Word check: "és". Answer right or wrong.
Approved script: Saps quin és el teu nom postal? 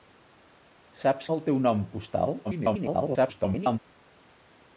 wrong